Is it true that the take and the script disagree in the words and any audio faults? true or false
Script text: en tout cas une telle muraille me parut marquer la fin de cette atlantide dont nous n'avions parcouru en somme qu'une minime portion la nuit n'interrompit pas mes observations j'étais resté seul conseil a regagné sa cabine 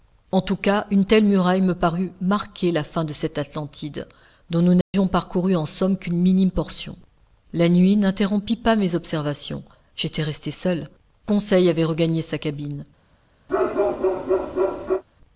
true